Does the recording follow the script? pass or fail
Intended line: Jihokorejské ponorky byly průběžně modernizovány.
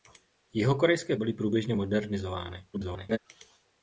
fail